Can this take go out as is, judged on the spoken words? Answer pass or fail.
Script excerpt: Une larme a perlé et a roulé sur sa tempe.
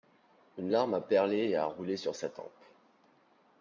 pass